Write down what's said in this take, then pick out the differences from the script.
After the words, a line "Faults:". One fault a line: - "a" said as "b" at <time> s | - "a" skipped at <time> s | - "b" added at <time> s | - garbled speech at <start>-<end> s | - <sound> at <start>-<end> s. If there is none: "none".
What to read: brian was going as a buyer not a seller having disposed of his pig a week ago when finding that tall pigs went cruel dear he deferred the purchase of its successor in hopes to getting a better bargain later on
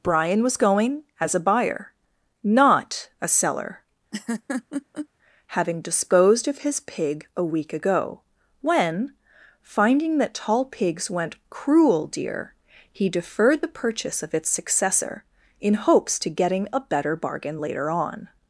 brian was going as a buyer not a seller having disposed of his pig a week ago when finding that tall pigs went cruel dear he deferred the purchase of its successor in hopes to getting a better bargain later on
Faults:
- laugh at 4.1-5.1 s